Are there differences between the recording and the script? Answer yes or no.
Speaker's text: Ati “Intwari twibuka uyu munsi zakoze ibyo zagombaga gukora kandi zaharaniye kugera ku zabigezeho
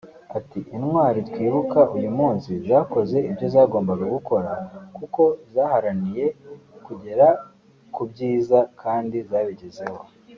yes